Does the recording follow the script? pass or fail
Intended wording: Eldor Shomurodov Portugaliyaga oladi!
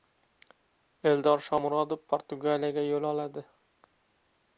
fail